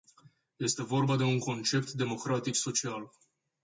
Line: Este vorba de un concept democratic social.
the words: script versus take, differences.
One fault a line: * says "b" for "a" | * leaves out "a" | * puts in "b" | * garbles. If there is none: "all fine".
all fine